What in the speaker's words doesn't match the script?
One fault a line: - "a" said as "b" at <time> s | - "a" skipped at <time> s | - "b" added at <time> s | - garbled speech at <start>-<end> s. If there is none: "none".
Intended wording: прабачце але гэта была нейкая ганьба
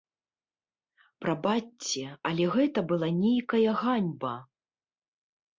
none